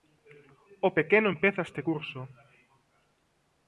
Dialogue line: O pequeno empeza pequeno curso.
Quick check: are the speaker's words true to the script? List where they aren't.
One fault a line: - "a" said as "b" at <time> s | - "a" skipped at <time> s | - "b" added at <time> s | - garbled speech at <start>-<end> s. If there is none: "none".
- "pequeno" said as "este" at 1.7 s